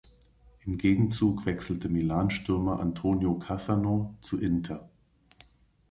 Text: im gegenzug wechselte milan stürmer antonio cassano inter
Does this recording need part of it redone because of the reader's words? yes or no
yes